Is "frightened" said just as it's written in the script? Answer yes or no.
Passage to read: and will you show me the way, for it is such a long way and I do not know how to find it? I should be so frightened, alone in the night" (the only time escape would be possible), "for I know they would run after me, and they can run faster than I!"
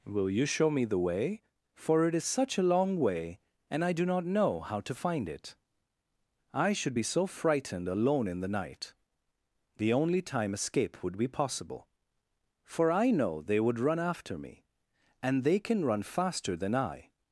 yes